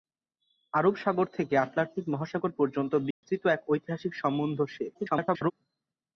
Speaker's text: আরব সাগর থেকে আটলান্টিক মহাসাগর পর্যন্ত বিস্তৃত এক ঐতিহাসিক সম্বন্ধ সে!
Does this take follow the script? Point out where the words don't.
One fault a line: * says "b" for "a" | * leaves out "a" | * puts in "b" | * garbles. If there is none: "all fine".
* garbles